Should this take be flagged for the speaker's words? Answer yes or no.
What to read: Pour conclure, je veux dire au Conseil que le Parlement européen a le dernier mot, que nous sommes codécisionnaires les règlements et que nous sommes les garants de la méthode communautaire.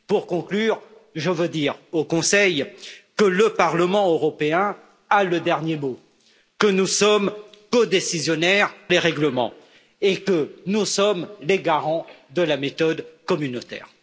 no